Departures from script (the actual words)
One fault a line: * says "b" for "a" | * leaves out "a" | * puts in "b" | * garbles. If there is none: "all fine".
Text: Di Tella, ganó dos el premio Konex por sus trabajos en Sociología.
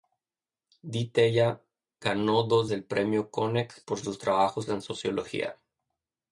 all fine